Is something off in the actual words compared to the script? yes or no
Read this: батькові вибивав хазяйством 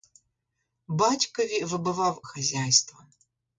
no